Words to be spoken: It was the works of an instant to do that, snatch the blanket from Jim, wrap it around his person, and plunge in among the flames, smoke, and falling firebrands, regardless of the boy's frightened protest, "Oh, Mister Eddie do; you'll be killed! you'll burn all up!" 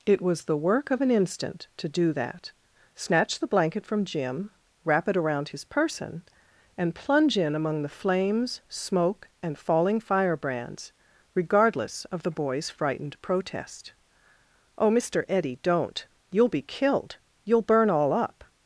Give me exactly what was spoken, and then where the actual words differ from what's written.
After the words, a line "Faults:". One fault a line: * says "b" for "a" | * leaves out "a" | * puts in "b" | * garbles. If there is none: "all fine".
It was the work of an instant to do that, snatch the blanket from Jim, wrap it around his person, and plunge in among the flames, smoke, and falling firebrands, regardless of the boy's frightened protest, "Oh, Mister Eddie don't; you'll be killed! you'll burn all up!"
Faults:
* says "work" for "works"
* says "don't" for "do"